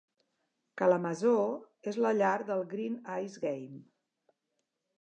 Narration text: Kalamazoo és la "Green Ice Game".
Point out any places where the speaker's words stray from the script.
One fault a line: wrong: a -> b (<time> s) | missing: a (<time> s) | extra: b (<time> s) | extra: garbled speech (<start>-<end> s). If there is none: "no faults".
extra: llar del (2.2 s)